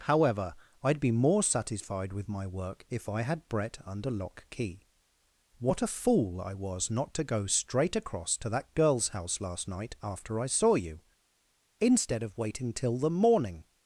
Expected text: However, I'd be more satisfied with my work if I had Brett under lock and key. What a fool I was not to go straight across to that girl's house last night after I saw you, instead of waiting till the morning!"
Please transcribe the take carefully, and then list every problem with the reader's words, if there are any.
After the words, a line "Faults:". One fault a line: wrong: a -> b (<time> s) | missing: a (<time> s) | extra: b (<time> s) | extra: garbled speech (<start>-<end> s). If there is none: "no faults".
However, I'd be more satisfied with my work if I had Brett under lock key. What a fool I was not to go straight across to that girl's house last night after I saw you, instead of waiting till the morning!"
Faults:
missing: and (4.5 s)